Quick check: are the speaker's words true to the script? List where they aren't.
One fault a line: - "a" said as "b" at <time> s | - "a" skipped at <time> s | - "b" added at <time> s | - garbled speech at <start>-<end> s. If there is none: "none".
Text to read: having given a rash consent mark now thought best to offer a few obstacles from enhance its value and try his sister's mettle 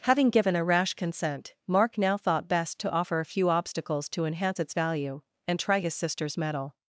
- "from" said as "to" at 4.1 s